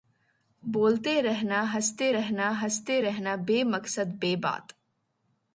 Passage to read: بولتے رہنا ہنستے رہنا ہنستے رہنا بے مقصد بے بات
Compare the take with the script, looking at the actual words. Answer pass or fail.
pass